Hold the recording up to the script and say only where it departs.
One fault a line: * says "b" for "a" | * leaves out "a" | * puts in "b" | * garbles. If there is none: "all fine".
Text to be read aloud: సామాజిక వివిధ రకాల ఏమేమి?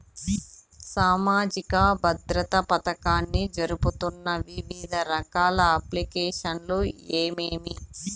* puts in "భద్రత పథకాన్ని జరుపుతున్న"
* puts in "అప్లికేషన్లు"